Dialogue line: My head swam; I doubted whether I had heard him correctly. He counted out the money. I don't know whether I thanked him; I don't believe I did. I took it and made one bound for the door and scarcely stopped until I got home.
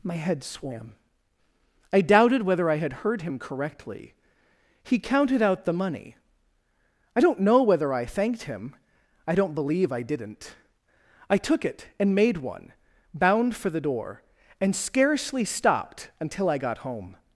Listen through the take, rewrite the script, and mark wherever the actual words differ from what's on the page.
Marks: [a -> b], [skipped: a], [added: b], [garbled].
My head swam; I doubted whether I had heard him correctly. He counted out the money. I don't know whether I thanked him; I don't believe I [did. -> didn't] I took it and made one bound for the door and scarcely stopped until I got home.